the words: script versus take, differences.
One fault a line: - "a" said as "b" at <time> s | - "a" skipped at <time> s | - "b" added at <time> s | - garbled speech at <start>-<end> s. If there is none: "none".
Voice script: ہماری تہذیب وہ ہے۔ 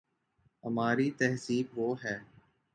none